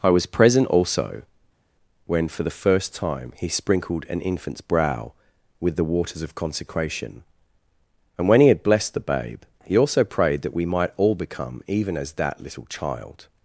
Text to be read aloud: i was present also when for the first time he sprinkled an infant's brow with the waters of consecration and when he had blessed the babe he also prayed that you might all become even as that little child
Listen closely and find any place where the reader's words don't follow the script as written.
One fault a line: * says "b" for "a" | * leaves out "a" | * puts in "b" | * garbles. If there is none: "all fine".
* says "we" for "you"